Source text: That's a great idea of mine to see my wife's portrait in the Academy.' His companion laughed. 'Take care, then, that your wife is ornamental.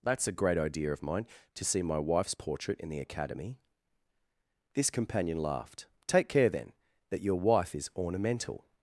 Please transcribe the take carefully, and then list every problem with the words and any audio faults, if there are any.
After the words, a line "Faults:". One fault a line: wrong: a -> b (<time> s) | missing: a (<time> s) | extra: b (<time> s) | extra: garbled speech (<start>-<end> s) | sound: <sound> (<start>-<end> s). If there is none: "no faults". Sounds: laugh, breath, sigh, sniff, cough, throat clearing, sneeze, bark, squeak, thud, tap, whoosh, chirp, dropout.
That's a great idea of mine to see my wife's portrait in the Academy.' This companion laughed. 'Take care, then, that your wife is ornamental.
Faults:
wrong: His -> This (4.7 s)